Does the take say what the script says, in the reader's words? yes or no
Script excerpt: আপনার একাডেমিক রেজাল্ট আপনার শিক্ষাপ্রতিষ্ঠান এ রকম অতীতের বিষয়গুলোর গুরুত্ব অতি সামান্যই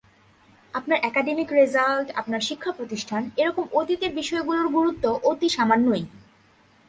yes